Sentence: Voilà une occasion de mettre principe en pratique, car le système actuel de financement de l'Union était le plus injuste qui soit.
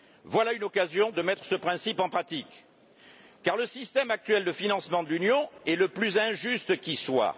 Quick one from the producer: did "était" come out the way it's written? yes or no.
no